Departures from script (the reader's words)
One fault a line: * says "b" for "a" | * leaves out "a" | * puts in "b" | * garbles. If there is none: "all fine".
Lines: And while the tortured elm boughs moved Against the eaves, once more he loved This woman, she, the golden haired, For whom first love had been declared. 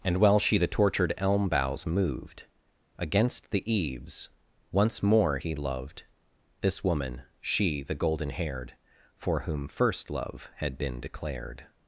* puts in "she"